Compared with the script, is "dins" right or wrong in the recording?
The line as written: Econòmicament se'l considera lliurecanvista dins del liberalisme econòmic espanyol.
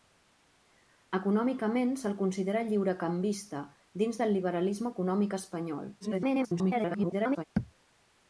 right